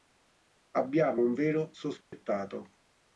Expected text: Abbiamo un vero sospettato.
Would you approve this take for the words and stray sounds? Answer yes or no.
no